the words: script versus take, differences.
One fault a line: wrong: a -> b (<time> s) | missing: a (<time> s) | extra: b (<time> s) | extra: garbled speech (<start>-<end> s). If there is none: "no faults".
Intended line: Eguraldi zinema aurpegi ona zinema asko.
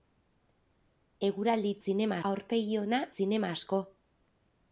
no faults